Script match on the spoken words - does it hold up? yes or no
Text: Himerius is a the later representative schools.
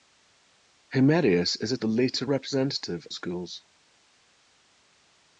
yes